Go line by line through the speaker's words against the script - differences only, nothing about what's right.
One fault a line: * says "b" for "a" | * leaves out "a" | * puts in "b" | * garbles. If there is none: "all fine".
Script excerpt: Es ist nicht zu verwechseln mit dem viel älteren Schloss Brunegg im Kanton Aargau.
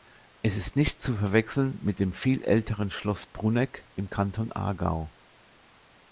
all fine